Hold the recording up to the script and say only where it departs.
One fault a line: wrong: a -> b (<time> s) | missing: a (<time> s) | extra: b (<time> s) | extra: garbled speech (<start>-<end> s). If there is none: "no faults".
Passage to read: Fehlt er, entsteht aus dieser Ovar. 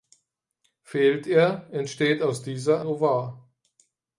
no faults